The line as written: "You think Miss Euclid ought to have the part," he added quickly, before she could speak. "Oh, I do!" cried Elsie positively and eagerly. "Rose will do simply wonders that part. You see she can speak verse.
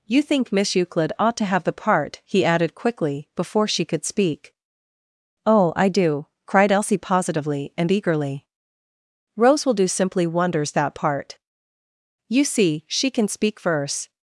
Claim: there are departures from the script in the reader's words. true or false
false